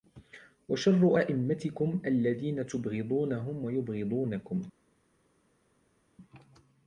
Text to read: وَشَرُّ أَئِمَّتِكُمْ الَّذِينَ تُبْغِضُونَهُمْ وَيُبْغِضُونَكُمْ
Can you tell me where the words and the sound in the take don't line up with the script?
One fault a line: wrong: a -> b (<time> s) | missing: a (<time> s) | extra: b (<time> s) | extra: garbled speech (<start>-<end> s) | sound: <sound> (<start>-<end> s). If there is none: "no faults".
no faults